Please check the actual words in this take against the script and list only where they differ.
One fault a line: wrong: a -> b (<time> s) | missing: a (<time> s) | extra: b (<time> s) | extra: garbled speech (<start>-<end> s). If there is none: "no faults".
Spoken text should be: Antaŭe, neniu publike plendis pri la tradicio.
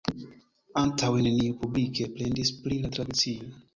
no faults